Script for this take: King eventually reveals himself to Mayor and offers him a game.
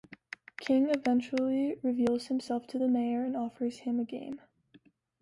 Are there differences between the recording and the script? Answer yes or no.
yes